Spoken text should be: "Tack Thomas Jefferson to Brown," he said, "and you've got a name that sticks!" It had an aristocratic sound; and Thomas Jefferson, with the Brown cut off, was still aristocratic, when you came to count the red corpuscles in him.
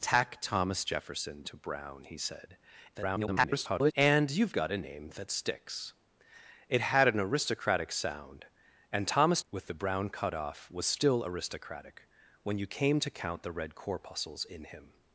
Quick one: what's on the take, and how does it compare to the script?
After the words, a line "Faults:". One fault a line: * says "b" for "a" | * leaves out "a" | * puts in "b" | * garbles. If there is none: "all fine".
"Tack Thomas Jefferson to Brown," he said, [garbled] "and you've got a name that sticks!" It had an aristocratic sound; and Thomas With the Brown cut off, was still aristocratic, when you came to count the red corpuscles in him.
Faults:
* garbles
* leaves out "Jefferson"